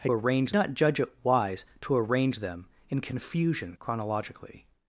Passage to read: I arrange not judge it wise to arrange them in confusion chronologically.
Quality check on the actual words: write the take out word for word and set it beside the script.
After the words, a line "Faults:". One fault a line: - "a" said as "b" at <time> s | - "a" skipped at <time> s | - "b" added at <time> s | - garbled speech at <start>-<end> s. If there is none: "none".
I arrange not judge it wise to arrange them in confusion chronologically.
Faults:
none